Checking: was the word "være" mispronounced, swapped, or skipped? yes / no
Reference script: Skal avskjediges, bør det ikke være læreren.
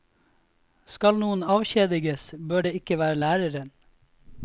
no